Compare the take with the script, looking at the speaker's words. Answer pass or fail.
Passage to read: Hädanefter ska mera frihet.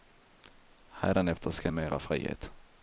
pass